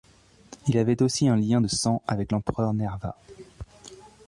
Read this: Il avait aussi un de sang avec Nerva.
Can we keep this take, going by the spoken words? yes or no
no